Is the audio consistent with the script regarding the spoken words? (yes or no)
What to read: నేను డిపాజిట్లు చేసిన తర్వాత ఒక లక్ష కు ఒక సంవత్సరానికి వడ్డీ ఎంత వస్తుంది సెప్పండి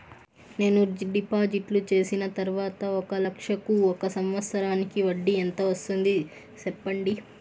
yes